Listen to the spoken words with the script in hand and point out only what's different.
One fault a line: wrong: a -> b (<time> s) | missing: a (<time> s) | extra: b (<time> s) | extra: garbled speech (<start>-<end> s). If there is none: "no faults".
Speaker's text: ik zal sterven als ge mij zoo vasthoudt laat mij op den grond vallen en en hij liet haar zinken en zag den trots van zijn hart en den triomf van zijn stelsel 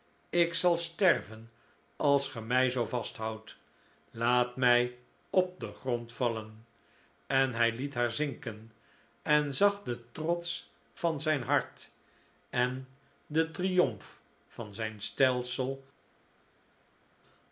missing: en (7.5 s)